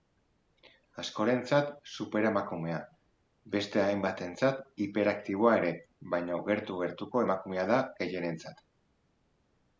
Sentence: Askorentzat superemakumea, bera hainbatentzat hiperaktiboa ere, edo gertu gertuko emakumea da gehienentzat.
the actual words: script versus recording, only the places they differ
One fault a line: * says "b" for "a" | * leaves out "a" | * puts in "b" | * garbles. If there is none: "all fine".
* says "beste" for "bera"
* says "baina" for "edo"